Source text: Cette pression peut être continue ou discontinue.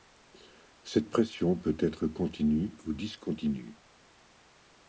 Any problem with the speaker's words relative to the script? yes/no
no